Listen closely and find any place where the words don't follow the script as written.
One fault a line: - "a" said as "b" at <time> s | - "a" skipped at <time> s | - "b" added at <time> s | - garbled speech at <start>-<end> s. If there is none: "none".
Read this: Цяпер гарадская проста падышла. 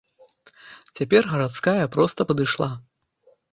none